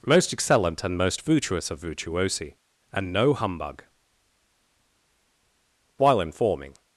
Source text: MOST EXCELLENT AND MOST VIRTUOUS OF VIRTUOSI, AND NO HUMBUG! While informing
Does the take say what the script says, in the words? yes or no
yes